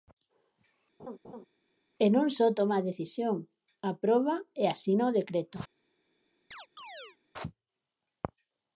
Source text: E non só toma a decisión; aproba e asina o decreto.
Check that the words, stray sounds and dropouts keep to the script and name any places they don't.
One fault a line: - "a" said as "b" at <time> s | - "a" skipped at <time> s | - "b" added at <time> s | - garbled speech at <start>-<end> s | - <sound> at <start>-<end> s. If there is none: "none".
- laugh at 1.0-1.5 s
- chirp at 6.5-7.2 s